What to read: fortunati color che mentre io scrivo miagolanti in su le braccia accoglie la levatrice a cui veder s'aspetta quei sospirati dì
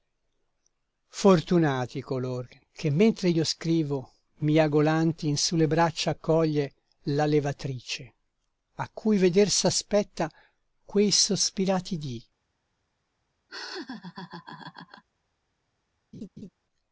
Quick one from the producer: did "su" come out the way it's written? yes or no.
yes